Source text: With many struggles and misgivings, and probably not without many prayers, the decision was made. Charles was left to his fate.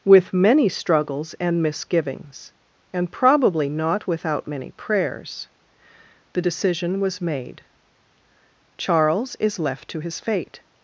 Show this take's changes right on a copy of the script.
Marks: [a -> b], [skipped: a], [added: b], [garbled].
With many struggles and misgivings, and probably not without many prayers, the decision was made. Charles [was -> is] left to his fate.